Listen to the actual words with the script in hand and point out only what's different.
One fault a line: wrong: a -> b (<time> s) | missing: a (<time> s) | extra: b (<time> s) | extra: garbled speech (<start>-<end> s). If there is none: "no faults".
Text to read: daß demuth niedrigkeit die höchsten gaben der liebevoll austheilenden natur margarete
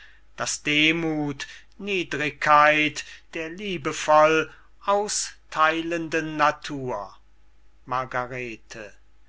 missing: die höchsten gaben (3.0 s)